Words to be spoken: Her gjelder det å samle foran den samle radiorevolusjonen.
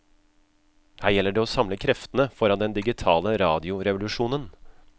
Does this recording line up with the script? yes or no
no